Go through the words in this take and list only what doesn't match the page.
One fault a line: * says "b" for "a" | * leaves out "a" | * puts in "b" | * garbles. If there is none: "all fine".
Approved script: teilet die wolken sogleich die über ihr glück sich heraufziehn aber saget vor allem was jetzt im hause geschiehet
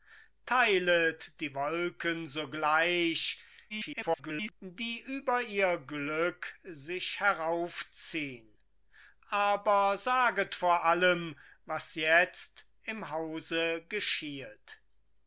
* garbles